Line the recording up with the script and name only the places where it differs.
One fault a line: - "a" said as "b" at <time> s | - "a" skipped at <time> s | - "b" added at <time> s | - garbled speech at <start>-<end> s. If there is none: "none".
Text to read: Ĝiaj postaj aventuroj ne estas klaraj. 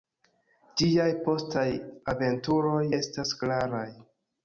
- "ne" skipped at 2.8 s